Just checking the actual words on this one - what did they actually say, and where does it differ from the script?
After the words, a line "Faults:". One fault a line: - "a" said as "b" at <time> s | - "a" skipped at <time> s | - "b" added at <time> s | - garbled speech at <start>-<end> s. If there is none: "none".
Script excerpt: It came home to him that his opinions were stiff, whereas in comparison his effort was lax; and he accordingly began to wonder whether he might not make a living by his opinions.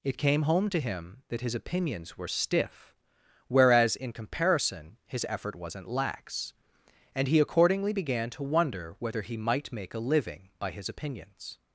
It came home to him that his opinions were stiff, whereas in comparison his effort wasn't lax; and he accordingly began to wonder whether he might make a living by his opinions.
Faults:
- "was" said as "wasn't" at 5.6 s
- "not" skipped at 9.7 s